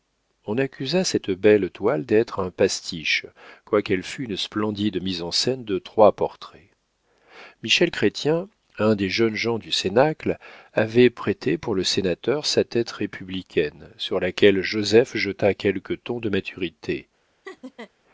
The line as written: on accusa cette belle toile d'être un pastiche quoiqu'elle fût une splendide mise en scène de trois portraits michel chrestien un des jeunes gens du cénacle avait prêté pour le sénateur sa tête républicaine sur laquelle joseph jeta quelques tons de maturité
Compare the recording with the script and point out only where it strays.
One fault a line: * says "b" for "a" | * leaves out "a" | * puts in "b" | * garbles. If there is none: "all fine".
all fine